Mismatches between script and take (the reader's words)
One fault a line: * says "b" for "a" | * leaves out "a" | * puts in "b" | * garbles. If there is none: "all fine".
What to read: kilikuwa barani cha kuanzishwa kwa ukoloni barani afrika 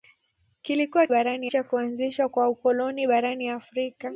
all fine